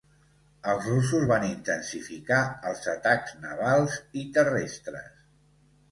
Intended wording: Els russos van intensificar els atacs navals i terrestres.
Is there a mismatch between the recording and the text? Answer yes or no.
no